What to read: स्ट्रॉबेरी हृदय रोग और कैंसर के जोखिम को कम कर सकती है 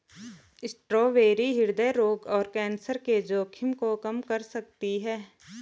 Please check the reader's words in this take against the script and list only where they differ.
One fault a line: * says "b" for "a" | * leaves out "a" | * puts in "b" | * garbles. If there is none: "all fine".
all fine